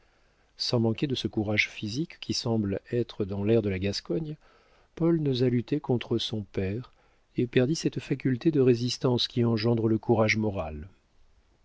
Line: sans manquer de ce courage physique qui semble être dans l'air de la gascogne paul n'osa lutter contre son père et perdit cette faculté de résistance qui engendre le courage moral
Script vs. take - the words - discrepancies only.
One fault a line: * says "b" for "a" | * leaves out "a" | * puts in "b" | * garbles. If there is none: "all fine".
all fine